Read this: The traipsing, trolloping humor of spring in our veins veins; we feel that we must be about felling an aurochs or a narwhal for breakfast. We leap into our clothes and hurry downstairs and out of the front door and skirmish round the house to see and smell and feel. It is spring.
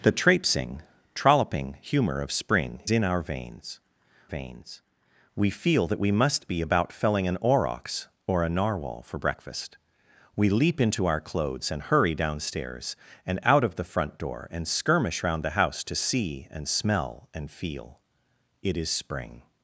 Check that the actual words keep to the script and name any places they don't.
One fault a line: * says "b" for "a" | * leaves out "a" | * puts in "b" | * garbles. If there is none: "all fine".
all fine